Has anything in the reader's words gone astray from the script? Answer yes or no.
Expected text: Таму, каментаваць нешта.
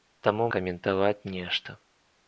no